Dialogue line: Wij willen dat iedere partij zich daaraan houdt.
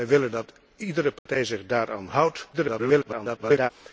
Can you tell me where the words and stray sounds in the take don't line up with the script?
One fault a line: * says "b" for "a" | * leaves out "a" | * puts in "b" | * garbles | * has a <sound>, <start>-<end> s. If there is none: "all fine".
* has a dropout, 1.2-1.3 s
* garbles